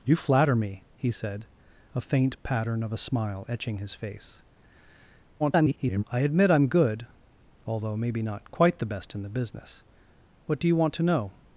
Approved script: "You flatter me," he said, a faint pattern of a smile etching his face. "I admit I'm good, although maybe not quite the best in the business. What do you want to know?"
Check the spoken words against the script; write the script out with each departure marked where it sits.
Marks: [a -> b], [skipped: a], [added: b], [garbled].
"You flatter me," he said, a faint pattern of a smile etching his face. [garbled] "I admit I'm good, although maybe not quite the best in the business. What do you want to know?"